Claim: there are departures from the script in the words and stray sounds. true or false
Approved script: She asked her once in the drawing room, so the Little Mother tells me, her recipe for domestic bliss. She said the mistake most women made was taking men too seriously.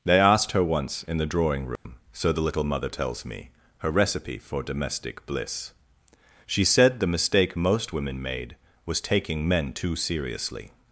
true